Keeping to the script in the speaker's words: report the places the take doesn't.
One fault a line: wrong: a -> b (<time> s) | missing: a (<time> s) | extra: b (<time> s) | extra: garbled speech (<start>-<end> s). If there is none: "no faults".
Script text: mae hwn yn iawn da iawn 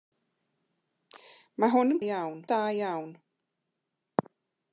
no faults